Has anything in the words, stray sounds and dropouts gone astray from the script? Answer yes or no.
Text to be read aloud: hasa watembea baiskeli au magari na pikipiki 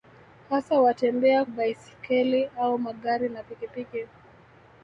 no